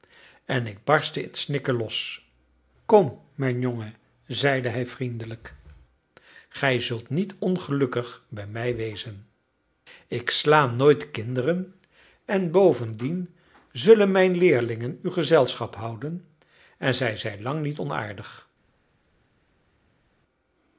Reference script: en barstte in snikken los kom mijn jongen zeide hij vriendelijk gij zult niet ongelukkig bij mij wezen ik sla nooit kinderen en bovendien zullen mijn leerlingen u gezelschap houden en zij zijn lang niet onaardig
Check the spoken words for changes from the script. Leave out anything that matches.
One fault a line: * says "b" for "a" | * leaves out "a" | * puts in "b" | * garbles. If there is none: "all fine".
* puts in "ik"